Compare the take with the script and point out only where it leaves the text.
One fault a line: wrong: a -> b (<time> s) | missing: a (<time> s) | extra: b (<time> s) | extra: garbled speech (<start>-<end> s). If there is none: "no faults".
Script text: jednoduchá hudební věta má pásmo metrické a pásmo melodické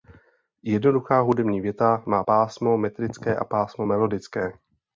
no faults